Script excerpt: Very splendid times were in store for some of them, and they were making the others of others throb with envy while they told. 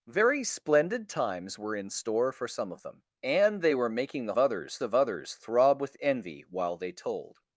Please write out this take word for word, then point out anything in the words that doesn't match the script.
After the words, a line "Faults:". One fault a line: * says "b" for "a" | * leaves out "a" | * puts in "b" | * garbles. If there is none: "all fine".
Very splendid times were in store for some of them, and they were making the others of others throb with envy while they told.
Faults:
all fine